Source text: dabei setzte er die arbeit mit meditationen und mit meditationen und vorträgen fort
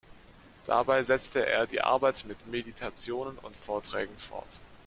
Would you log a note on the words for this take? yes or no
yes